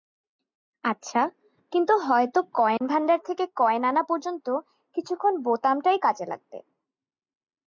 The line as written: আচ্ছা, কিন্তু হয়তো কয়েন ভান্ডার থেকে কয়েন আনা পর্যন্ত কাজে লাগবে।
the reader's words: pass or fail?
fail